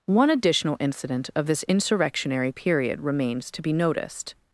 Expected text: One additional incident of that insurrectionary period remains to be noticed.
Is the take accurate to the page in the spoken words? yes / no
no